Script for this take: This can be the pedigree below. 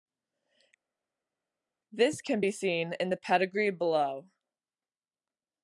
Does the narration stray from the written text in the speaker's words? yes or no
yes